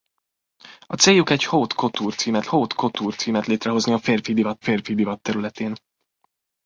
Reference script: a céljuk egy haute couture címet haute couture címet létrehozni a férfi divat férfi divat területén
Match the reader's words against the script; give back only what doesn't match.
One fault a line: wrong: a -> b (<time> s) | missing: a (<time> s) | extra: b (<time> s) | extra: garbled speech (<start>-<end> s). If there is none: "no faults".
no faults